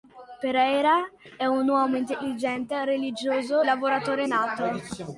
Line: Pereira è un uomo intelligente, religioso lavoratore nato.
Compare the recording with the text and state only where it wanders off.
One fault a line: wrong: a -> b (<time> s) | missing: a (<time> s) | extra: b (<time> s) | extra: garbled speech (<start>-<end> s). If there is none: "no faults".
no faults